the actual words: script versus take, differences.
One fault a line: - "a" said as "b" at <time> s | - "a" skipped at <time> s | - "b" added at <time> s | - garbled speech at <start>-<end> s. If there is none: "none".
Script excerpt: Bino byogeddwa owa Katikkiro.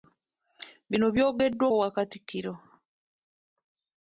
none